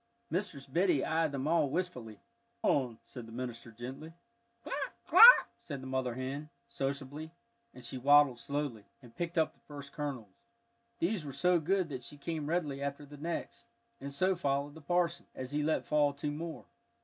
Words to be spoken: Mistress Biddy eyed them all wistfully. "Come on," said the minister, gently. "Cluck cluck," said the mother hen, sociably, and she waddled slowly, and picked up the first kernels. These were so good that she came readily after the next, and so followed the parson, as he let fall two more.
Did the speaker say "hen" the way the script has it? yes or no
yes